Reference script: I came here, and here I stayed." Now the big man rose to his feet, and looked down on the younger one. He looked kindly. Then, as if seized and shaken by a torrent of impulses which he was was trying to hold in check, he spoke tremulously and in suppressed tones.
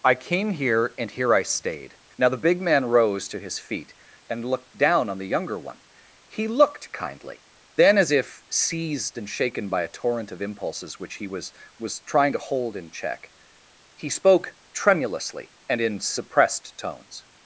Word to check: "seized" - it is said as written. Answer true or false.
true